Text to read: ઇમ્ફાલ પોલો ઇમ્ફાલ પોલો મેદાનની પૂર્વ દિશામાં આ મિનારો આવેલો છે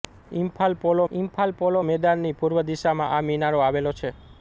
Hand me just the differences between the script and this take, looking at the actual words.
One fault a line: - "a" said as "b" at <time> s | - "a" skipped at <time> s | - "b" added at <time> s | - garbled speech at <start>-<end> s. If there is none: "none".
none